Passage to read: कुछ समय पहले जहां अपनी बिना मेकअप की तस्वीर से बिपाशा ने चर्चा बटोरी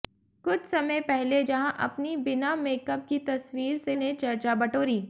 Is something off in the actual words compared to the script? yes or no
yes